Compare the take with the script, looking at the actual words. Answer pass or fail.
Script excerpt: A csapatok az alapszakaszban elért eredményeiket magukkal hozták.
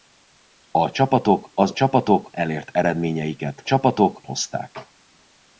fail